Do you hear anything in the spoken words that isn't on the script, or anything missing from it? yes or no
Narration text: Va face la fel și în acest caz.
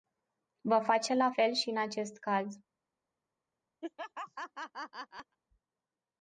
no